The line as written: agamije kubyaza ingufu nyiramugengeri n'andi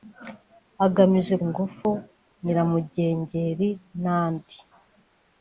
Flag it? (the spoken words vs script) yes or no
yes